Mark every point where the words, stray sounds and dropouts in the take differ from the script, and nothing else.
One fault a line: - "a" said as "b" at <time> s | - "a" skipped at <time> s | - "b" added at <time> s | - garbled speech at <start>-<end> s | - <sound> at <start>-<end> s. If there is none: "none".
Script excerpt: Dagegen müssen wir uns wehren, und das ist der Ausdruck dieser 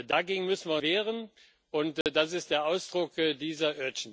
- "uns" skipped at 0.8 s
- dropout at 2.0-2.1 s